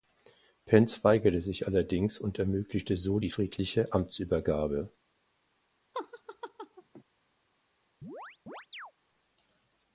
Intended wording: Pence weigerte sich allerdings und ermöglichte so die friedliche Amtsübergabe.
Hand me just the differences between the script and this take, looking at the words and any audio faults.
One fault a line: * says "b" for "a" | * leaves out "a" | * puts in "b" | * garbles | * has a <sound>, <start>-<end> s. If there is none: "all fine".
* has a laugh, 5.9-7.0 s
* has a chirp, 8.0-8.9 s